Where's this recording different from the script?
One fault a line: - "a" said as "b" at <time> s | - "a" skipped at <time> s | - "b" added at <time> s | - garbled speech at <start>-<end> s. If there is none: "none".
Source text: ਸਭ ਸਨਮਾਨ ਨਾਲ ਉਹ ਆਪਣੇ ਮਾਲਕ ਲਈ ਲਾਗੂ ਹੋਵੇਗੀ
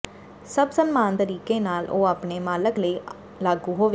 - "ਤਰੀਕੇ" added at 1.1 s